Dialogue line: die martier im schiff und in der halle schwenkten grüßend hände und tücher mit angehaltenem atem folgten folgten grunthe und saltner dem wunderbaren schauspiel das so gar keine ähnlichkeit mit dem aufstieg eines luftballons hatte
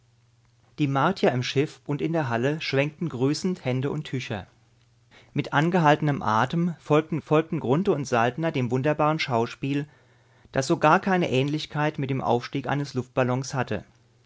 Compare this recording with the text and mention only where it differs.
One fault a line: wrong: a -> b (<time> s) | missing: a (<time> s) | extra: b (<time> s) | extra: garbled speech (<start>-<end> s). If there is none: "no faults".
no faults